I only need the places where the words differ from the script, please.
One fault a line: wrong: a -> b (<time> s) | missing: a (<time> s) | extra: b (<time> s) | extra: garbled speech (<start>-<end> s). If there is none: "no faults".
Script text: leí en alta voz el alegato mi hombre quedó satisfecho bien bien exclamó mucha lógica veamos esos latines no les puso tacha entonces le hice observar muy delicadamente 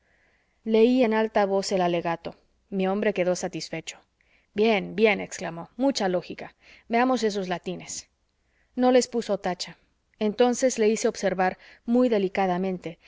no faults